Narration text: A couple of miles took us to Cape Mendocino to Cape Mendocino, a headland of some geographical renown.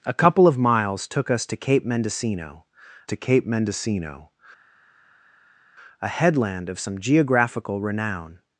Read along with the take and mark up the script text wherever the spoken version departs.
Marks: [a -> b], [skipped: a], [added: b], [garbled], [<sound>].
A couple of miles took us to Cape Mendocino to Cape Mendocino, a headland of some geographical renown.